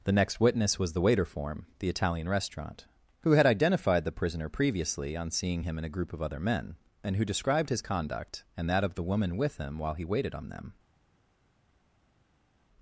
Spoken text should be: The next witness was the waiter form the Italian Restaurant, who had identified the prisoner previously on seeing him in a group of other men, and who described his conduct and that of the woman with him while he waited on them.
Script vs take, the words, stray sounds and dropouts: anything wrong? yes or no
no